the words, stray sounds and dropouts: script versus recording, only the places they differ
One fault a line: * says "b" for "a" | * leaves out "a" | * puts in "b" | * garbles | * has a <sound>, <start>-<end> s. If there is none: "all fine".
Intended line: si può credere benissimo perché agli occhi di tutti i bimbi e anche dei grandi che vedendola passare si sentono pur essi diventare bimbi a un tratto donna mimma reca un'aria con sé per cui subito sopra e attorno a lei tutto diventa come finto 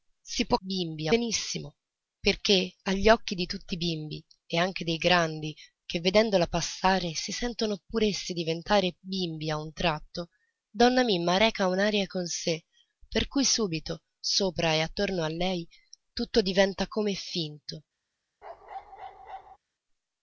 * says "bimbi" for "credere"
* has a bark, 18.4-19.6 s